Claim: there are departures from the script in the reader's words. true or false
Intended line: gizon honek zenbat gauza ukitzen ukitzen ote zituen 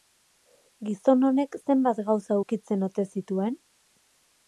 true